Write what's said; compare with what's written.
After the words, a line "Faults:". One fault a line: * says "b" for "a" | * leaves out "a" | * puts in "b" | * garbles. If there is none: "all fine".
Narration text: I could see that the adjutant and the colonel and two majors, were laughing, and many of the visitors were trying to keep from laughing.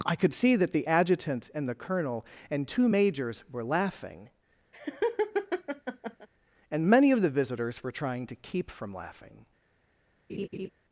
I could see that the adjutant and the colonel and two majors, were laughing, and many of the visitors were trying to keep from laughing.
Faults:
all fine